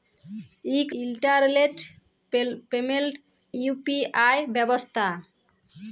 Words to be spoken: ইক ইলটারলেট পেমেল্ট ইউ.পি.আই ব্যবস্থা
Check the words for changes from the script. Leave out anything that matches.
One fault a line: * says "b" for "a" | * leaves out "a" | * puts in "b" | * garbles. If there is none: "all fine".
all fine